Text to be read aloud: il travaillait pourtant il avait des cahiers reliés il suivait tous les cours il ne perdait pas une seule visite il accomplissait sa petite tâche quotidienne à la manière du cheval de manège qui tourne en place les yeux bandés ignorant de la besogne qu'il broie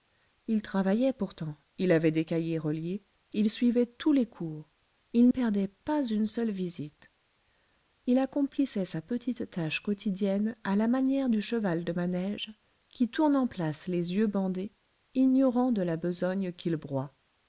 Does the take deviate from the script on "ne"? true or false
true